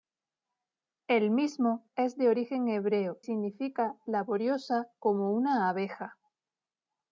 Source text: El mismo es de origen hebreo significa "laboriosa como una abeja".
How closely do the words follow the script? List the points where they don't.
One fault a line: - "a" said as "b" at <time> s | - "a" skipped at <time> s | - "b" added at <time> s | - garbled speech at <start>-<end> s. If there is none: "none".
none